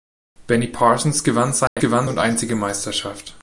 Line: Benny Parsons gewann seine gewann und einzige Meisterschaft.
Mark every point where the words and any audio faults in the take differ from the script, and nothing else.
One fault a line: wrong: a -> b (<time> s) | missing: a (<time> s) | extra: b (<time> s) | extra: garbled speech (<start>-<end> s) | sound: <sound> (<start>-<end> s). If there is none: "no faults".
sound: dropout (1.7-1.8 s)